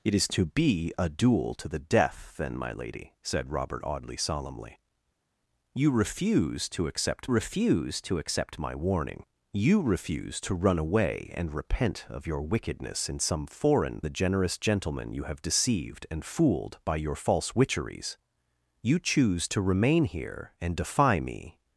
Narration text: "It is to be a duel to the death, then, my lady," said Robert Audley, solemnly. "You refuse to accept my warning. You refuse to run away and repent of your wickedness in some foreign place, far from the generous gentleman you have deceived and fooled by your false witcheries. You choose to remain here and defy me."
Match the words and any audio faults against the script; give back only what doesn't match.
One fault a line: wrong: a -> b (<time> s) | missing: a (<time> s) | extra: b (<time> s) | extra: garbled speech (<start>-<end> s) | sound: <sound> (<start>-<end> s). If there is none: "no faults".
extra: refuse to accept (7.3 s)
missing: place far from (14.0 s)